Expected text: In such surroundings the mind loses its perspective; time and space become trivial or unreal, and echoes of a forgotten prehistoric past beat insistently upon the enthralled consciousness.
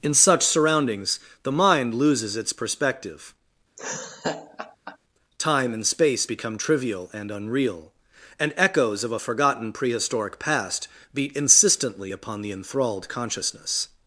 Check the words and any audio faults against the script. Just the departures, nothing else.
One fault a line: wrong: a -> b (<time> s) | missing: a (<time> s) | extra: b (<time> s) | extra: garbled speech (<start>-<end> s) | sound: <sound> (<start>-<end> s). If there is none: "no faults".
sound: laugh (3.8-5.0 s)
wrong: or -> and (7.1 s)